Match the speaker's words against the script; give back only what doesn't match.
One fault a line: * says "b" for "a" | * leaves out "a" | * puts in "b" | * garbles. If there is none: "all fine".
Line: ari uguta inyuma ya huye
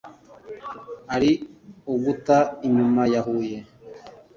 all fine